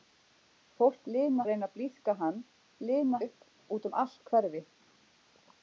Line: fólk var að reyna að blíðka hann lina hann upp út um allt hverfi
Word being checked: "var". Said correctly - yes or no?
no